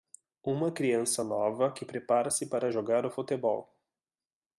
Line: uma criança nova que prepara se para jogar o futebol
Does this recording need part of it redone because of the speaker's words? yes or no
no